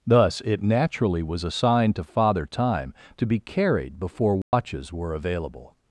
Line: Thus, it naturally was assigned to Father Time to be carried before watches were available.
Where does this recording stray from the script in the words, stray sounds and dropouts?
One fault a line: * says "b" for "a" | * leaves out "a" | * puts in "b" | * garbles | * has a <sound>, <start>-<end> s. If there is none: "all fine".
* has a dropout, 4.4-4.5 s